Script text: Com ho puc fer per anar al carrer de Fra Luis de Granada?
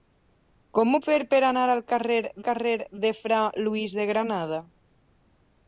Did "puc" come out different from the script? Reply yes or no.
yes